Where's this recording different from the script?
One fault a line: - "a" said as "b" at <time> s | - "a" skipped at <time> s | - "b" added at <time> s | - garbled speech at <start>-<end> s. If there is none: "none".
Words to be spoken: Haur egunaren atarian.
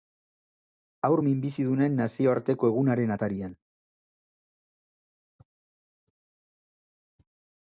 - "minbizidunen nazioarteko" added at 1.2 s